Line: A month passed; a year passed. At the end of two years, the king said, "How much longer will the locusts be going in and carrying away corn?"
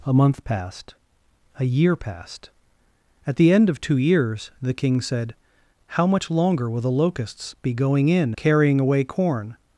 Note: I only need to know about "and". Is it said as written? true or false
false